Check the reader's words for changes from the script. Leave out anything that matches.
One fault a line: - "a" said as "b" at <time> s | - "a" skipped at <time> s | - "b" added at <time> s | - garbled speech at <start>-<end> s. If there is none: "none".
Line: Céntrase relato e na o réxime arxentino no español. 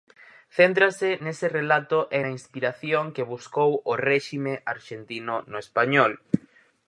- "nese" added at 1.2 s
- "inspiración que buscou" added at 2.4 s